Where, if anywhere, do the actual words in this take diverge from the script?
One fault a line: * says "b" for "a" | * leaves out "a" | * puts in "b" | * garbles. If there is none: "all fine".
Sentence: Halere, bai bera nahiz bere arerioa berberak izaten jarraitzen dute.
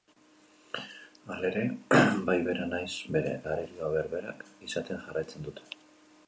all fine